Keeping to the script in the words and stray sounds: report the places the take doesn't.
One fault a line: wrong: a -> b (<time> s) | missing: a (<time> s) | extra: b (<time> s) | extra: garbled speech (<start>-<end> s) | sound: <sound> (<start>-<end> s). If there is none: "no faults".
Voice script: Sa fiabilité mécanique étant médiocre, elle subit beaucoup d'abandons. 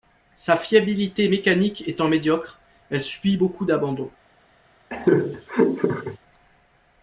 sound: laugh (4.9-6.2 s)